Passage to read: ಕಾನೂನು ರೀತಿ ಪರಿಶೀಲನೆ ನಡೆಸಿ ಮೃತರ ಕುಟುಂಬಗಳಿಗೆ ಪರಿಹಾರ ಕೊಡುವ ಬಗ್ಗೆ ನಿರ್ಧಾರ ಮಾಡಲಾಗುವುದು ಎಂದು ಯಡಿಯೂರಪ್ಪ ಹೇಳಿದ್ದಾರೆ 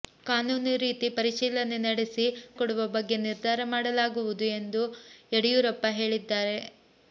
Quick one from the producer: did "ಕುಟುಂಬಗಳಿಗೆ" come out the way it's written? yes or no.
no